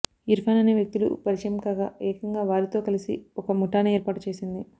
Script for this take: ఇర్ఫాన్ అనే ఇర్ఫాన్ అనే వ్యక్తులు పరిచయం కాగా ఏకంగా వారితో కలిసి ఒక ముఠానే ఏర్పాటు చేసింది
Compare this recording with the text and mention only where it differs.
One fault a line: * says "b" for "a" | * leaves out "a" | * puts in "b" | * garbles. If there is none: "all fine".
* leaves out "ఇర్ఫాన్ అనే"